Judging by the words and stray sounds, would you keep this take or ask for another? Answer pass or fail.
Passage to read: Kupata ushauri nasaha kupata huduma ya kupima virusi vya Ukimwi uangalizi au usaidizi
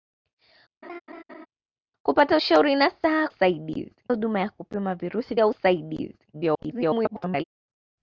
fail